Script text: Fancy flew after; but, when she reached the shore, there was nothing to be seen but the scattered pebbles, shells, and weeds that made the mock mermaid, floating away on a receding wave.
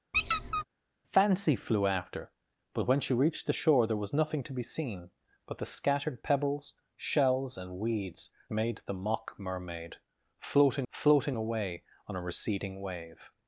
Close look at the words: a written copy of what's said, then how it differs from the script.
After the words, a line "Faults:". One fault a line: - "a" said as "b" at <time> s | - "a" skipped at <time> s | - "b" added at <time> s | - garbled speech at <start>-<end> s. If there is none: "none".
Fancy flew after; but, when she reached the shore, there was nothing to be seen but the scattered pebbles, shells, and weeds made the mock mermaid, floating floating away on a receding wave.
Faults:
- "that" skipped at 8.3 s
- "floating" added at 10.9 s